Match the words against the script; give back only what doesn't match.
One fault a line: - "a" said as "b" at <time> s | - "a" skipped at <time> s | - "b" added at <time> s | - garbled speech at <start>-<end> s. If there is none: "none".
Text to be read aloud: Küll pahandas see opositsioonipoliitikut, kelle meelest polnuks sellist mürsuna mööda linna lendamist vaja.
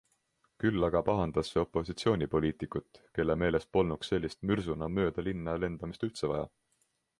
- "aga" added at 0.8 s
- "üldse" added at 6.1 s